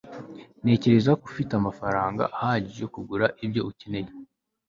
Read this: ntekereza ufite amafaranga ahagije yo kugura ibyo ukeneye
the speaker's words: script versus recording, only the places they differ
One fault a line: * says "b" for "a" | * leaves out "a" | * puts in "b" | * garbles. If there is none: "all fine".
all fine